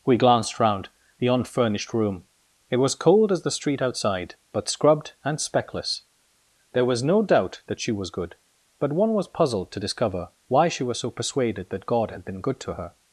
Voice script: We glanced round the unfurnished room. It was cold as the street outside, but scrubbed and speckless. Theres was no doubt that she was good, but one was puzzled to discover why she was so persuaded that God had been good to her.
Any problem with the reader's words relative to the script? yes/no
yes